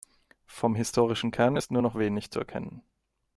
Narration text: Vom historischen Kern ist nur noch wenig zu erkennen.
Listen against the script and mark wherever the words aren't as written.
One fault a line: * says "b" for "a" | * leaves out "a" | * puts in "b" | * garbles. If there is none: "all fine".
all fine